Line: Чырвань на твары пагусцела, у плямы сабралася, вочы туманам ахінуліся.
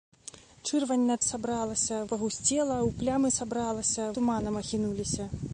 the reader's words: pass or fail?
fail